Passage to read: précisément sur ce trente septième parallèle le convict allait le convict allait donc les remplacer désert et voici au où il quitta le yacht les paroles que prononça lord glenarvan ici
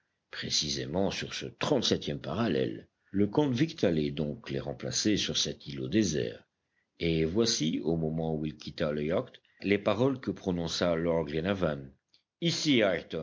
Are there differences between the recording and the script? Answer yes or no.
yes